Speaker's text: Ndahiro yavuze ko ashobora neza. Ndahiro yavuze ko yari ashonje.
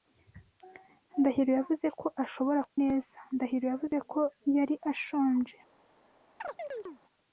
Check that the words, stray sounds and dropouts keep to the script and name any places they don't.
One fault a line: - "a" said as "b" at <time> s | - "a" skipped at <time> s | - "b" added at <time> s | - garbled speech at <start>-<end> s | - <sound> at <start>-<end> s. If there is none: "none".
- chirp at 6.4-7.0 s